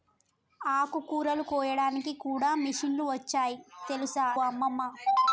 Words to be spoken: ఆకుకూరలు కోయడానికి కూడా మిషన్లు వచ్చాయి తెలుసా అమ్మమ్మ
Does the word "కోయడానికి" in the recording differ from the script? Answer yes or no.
no